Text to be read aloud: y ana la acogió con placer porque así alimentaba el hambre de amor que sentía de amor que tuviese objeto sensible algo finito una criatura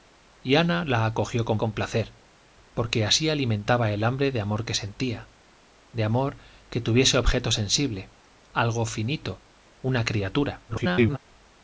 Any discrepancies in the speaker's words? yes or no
yes